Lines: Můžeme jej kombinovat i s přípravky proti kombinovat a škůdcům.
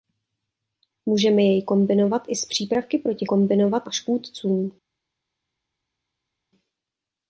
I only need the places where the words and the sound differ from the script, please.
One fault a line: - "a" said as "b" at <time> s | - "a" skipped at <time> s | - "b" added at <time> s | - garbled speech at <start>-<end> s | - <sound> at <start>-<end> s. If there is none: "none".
none